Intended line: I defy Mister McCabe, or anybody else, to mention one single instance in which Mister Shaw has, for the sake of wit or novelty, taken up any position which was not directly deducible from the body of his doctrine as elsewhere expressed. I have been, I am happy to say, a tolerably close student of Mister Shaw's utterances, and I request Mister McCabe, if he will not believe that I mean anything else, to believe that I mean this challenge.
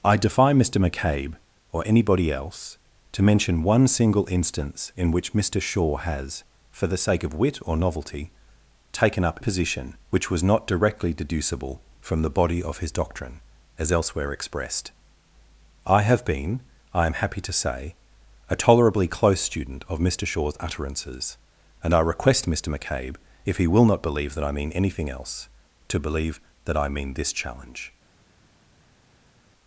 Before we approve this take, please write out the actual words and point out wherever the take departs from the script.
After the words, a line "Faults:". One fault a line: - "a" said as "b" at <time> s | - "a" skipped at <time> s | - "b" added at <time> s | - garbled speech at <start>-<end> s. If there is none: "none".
I defy Mister McCabe, or anybody else, to mention one single instance in which Mister Shaw has, for the sake of wit or novelty, taken up position which was not directly deducible from the body of his doctrine as elsewhere expressed. I have been, I am happy to say, a tolerably close student of Mister Shaw's utterances, and I request Mister McCabe, if he will not believe that I mean anything else, to believe that I mean this challenge.
Faults:
- "any" skipped at 9.4 s